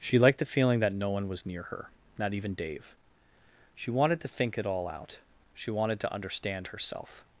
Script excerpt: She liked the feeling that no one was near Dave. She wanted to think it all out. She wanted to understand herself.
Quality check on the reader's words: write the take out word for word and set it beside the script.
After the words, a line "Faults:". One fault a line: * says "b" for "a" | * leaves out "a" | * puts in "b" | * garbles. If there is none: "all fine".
She liked the feeling that no one was near her not even Dave. She wanted to think it all out. She wanted to understand herself.
Faults:
* puts in "her not even"